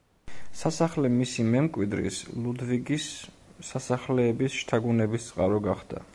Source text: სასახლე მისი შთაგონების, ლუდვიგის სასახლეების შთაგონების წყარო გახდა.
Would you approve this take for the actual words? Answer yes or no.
no